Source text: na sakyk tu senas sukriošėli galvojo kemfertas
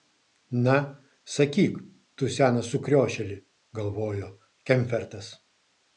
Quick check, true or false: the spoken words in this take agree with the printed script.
true